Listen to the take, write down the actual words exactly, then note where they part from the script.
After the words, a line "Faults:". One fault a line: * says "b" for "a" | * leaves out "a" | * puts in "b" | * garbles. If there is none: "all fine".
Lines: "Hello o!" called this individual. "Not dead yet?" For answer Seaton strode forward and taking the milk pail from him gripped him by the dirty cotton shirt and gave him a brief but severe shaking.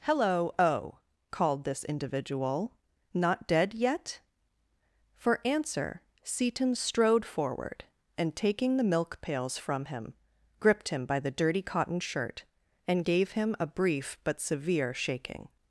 "Hello o!" called this individual. "Not dead yet?" For answer Seaton strode forward and taking the milk pails from him gripped him by the dirty cotton shirt and gave him a brief but severe shaking.
Faults:
* says "pails" for "pail"